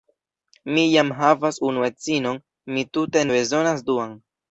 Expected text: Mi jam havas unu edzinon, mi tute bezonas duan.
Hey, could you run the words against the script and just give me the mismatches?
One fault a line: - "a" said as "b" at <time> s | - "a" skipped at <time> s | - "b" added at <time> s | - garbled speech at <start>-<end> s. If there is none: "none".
none